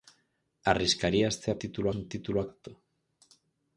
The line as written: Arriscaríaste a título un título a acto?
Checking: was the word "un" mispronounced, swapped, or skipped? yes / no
no